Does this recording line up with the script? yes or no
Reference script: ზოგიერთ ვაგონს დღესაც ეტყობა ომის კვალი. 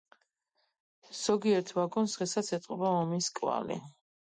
yes